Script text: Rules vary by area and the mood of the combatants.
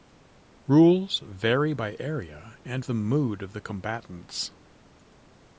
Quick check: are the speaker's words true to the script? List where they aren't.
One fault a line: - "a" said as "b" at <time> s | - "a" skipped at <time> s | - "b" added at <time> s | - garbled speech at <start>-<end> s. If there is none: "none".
none